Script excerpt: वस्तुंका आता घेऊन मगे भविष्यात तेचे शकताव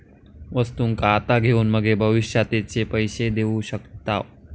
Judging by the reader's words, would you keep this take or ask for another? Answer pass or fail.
fail